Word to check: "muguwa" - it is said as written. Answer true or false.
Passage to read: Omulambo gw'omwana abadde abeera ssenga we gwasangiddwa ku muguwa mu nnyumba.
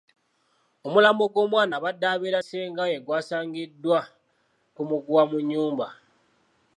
true